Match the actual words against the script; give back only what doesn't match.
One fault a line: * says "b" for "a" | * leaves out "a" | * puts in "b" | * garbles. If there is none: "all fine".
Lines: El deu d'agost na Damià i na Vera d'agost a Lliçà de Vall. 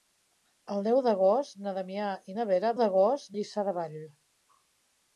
all fine